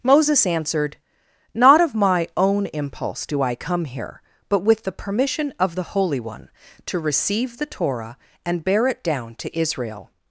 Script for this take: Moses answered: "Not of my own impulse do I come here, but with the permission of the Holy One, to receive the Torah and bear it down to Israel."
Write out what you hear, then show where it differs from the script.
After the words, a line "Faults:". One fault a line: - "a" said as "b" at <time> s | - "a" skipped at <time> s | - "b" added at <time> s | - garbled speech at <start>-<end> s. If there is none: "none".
Moses answered: "Not of my own impulse do I come here, but with the permission of the Holy One, to receive the Torah and bear it down to Israel."
Faults:
none